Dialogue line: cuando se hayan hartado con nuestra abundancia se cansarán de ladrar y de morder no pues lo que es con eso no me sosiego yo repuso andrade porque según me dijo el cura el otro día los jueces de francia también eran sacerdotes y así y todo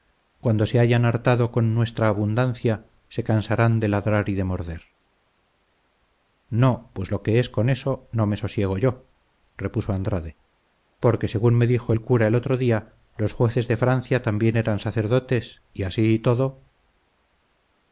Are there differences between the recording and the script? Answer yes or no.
no